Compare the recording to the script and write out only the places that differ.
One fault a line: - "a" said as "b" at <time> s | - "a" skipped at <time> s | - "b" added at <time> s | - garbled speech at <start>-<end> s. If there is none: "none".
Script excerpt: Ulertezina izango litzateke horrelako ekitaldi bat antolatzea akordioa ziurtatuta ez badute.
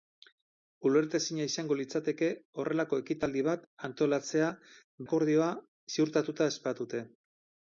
none